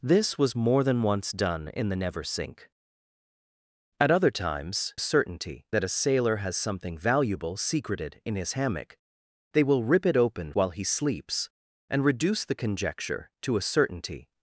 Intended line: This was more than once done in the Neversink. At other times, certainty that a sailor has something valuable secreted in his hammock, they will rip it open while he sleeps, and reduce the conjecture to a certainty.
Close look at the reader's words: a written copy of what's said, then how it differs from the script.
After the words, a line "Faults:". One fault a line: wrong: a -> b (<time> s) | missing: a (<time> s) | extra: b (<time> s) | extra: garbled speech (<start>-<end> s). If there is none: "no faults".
This was more than once done in the Neversink. At other times, certainty that a sailor has something valuable secreted in his hammock, they will rip it open while he sleeps, and reduce the conjecture to a certainty.
Faults:
no faults